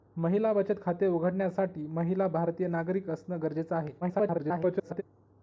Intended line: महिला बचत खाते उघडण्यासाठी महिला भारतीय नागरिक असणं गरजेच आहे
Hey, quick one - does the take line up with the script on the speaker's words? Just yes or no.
no